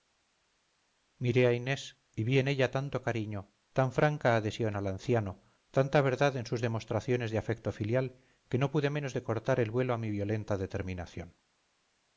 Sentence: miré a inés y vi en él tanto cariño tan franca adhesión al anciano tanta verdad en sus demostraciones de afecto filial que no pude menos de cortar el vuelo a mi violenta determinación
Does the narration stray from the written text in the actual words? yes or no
yes